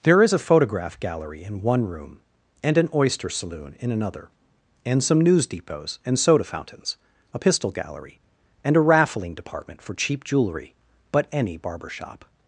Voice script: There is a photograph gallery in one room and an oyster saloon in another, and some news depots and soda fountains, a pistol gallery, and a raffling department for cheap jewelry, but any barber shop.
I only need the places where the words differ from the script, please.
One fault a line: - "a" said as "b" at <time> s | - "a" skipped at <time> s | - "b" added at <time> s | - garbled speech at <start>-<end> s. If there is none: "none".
none